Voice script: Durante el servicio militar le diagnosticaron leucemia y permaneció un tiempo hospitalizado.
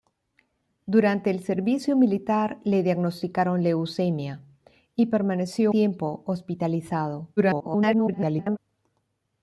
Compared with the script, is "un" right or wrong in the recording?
wrong